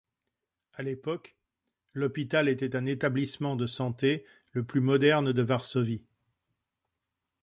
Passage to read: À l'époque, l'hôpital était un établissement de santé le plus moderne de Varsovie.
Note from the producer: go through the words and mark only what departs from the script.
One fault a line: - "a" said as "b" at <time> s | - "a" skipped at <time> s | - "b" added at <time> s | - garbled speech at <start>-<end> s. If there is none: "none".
none